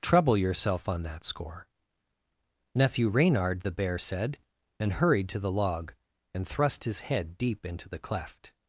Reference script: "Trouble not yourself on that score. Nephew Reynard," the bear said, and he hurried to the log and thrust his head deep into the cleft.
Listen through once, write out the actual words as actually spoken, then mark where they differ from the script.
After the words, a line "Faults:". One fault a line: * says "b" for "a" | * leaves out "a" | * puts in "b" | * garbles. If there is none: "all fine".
"Trouble yourself on that score. Nephew Reynard," the bear said, and hurried to the log and thrust his head deep into the cleft.
Faults:
* leaves out "not"
* leaves out "he"